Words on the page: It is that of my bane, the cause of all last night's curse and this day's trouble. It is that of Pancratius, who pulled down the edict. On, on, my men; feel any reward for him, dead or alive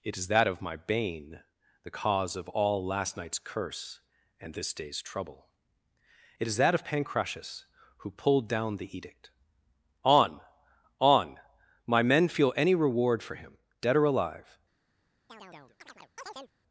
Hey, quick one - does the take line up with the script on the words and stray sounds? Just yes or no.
no